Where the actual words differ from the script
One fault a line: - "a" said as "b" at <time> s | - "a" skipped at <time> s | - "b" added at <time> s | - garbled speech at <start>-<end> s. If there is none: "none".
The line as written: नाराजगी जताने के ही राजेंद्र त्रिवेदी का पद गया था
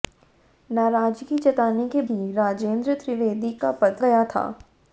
none